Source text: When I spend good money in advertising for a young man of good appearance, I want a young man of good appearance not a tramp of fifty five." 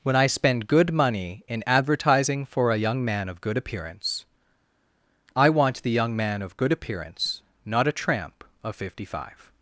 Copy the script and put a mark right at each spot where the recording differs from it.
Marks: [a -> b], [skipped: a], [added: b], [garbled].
When I spend good money in advertising for a young man of good appearance, I want [a -> the] young man of good appearance not a tramp of fifty five."